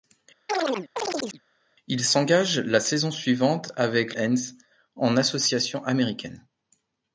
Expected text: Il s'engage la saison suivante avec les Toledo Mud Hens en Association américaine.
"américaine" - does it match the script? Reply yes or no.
yes